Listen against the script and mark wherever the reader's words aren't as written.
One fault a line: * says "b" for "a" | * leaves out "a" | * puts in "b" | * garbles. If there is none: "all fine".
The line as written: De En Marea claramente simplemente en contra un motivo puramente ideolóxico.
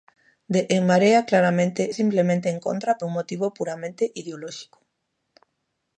all fine